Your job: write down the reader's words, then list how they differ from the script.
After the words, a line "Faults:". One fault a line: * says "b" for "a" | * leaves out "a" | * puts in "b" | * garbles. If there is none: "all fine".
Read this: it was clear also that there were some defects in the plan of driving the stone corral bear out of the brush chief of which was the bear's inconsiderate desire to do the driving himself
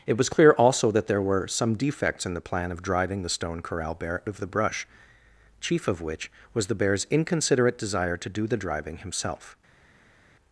it was clear also that there were some defects in the plan of driving the stone corral bear of the brush chief of which was the bear's inconsiderate desire to do the driving himself
Faults:
* leaves out "out"